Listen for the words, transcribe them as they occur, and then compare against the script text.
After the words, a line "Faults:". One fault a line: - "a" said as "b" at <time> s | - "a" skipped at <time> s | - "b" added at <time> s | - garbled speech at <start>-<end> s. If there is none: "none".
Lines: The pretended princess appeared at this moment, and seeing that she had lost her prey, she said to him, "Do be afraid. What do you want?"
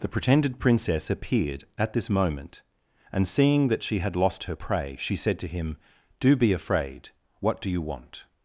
The pretended princess appeared at this moment, and seeing that she had lost her prey, she said to him, "Do be afraid. What do you want?"
Faults:
none